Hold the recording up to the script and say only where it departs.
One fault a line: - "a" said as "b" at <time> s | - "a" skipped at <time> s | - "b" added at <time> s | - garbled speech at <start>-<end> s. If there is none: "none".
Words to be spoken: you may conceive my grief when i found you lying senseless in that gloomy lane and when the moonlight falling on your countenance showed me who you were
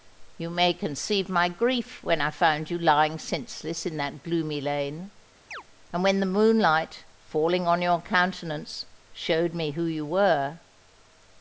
none